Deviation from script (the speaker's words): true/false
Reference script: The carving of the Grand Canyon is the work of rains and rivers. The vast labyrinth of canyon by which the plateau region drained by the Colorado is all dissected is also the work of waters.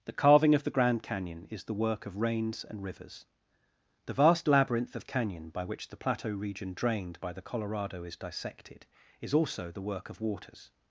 true